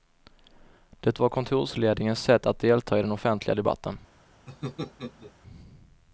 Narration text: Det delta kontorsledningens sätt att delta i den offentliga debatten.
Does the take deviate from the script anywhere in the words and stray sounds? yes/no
yes